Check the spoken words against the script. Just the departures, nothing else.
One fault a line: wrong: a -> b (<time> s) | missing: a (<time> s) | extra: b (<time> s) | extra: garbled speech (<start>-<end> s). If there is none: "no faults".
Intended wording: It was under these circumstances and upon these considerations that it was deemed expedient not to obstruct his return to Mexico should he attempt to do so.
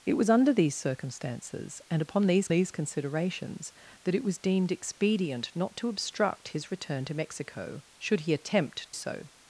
extra: these (2.5 s)
missing: to do (8.9 s)